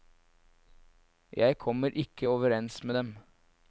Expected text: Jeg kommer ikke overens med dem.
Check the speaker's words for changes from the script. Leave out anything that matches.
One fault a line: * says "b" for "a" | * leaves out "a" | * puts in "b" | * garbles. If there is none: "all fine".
all fine